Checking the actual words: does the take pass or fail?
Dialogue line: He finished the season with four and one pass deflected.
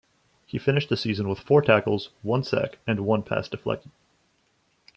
fail